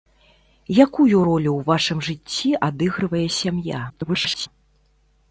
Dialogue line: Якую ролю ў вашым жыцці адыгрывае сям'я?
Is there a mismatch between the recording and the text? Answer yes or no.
yes